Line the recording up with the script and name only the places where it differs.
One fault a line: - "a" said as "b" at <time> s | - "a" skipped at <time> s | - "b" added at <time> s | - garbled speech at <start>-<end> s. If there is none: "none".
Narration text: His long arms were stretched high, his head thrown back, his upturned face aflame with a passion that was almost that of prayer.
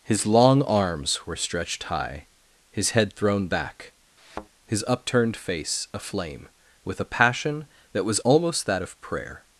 none